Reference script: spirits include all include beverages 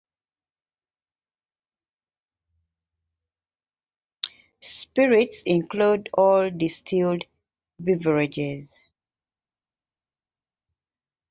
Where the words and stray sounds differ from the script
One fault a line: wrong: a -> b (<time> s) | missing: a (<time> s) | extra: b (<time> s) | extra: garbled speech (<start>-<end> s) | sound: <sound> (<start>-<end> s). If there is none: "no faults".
wrong: include -> distilled (6.5 s)